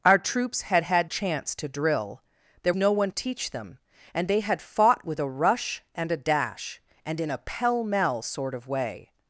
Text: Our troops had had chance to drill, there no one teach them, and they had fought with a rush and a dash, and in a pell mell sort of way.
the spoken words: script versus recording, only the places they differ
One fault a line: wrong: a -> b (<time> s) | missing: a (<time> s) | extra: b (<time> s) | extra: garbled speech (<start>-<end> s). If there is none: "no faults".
no faults